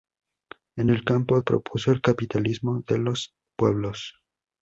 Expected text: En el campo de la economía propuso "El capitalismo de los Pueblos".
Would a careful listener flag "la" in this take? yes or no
yes